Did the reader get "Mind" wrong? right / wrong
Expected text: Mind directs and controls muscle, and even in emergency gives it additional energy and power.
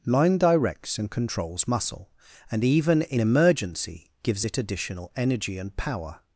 wrong